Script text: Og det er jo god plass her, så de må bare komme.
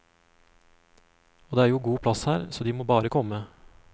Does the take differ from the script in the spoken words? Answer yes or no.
no